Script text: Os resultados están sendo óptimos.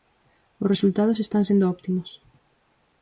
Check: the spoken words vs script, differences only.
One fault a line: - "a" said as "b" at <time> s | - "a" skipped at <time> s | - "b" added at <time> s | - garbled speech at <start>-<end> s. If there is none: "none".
none